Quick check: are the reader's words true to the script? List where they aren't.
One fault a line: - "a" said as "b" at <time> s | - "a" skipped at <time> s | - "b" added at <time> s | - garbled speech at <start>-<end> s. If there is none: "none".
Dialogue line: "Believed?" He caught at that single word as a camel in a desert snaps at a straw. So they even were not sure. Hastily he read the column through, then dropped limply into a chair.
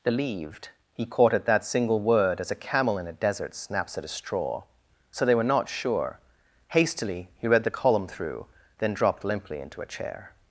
- "even" skipped at 5.3 s